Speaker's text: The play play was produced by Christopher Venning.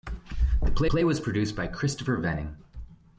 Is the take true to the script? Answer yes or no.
yes